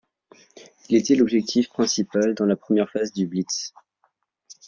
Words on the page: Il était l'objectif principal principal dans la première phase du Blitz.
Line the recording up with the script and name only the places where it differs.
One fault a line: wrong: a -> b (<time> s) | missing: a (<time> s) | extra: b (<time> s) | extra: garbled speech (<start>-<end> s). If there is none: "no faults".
missing: principal (2.3 s)